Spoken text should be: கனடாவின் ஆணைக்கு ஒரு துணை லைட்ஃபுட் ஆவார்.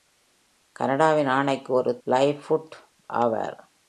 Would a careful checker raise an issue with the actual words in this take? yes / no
yes